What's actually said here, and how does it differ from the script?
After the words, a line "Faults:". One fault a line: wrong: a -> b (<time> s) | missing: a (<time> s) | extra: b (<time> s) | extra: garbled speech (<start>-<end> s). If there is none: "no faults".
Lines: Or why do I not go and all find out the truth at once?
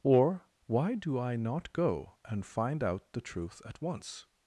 Or why do I not go and find out the truth at once?
Faults:
missing: all (2.5 s)